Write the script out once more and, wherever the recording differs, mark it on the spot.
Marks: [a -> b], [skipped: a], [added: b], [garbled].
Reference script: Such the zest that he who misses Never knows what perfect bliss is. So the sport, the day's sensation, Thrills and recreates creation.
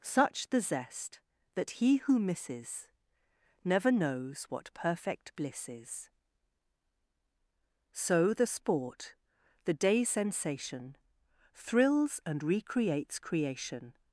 Such the zest that he who misses Never knows what perfect bliss is. So the sport, the day's sensation, Thrills and recreates creation.